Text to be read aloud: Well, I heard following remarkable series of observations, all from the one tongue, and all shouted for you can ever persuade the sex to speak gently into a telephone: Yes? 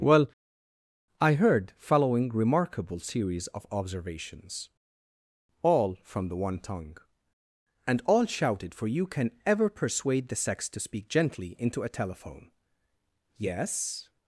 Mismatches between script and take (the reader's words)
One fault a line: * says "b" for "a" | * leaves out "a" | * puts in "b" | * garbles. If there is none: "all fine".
all fine